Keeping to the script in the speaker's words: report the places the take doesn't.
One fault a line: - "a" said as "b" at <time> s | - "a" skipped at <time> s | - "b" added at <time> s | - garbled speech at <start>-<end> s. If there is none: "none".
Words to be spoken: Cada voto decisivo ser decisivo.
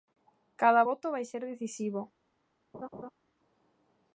- "decisivo" said as "vai" at 1.1 s